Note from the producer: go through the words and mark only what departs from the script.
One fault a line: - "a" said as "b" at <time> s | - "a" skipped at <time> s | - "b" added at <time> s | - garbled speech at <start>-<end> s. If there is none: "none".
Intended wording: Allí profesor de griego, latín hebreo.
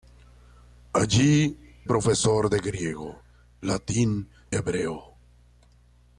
none